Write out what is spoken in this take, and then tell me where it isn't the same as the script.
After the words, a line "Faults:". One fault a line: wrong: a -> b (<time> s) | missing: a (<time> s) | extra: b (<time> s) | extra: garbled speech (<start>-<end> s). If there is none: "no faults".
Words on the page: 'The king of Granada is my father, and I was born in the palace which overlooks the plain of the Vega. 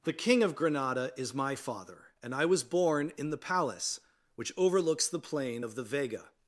'The king of Granada is my father, and I was born in the palace which overlooks the plain of the Vega.
Faults:
no faults